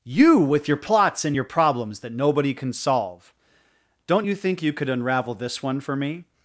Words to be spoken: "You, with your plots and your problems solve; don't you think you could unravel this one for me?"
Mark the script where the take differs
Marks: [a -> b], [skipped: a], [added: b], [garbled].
"You, with your plots and your problems [added: that nobody can] solve; don't you think you could unravel this one for me?"